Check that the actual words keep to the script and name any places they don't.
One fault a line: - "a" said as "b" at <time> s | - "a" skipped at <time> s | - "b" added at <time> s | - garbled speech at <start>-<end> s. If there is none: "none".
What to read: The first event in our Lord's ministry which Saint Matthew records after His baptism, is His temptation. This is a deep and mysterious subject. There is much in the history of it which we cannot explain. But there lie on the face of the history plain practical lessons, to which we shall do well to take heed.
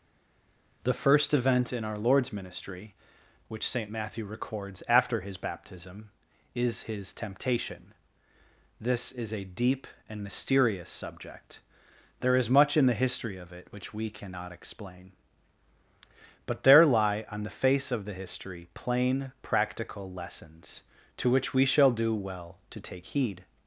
none